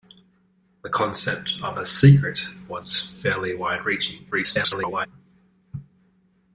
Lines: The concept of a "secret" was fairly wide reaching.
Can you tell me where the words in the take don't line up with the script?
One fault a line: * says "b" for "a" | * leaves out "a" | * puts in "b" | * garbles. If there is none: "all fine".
* garbles